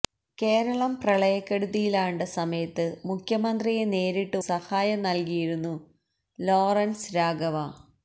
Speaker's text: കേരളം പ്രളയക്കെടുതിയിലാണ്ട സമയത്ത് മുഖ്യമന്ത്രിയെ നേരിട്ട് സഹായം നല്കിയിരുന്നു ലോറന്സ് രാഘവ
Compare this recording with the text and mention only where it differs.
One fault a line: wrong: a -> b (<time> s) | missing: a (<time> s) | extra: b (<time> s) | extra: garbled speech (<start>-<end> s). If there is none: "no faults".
no faults